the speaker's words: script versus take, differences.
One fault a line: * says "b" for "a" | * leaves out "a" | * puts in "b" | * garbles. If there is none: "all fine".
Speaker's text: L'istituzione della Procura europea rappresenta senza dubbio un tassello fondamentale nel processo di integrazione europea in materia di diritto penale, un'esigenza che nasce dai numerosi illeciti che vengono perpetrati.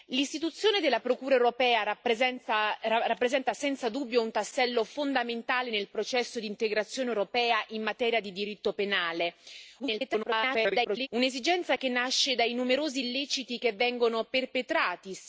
* garbles